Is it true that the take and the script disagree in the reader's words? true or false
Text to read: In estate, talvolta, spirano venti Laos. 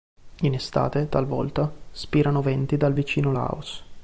true